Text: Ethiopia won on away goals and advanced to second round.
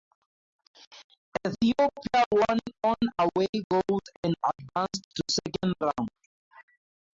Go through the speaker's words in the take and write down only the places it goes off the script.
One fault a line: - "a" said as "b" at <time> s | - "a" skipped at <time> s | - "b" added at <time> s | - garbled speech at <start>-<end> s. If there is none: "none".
none